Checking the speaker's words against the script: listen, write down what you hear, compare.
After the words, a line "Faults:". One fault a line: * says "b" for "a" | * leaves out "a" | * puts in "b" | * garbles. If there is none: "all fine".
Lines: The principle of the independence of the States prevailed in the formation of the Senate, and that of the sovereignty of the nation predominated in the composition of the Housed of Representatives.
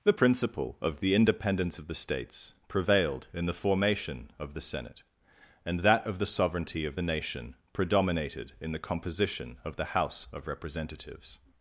The principle of the independence of the States prevailed in the formation of the Senate, and that of the sovereignty of the nation predominated in the composition of the House of Representatives.
Faults:
* says "House" for "Housed"